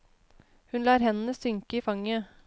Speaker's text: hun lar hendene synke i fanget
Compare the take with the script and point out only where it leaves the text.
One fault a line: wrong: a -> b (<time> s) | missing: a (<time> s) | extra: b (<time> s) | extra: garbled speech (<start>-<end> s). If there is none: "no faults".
no faults